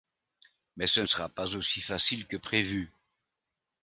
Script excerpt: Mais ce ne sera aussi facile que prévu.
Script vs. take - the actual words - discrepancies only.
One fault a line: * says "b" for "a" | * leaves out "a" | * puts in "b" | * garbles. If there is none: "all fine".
* puts in "pas"